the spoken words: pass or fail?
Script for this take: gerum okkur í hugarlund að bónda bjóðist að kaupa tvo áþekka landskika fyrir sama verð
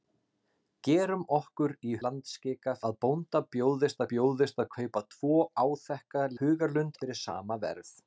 fail